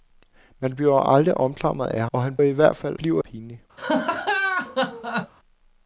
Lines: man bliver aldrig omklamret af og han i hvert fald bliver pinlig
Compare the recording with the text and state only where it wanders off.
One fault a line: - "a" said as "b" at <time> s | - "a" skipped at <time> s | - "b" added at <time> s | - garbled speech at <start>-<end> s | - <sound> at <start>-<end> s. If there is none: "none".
- laugh at 3.8-5.3 s